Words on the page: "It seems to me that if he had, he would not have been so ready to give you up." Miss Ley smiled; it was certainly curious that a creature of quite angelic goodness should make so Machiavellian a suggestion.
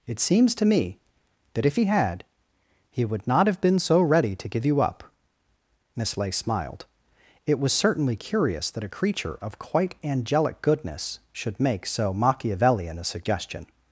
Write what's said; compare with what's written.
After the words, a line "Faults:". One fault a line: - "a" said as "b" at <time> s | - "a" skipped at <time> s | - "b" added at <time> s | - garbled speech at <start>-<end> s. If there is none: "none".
"It seems to me that if he had, he would not have been so ready to give you up." Miss Ley smiled; it was certainly curious that a creature of quite angelic goodness should make so Machiavellian a suggestion.
Faults:
none